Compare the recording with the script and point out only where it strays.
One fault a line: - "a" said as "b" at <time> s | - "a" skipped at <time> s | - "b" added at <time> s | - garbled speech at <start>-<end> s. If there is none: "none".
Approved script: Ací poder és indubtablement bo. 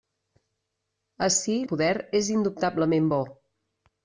none